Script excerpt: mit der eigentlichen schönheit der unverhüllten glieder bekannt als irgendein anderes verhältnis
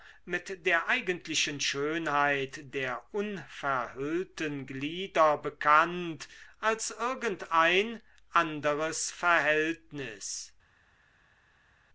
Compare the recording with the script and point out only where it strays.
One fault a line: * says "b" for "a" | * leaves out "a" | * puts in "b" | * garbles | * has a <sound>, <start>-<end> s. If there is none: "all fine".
all fine